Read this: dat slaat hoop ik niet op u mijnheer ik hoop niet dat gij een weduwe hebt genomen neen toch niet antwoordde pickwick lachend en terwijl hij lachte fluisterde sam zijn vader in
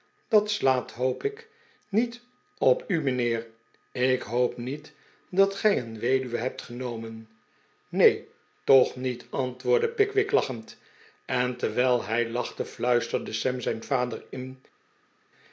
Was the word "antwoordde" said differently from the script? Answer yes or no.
no